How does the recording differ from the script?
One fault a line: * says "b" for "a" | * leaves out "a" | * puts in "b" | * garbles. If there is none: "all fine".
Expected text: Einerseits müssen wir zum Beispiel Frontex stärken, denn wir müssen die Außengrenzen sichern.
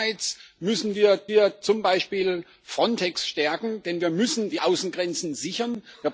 * puts in "wir"